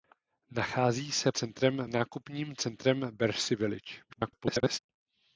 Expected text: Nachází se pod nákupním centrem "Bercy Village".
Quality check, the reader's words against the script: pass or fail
fail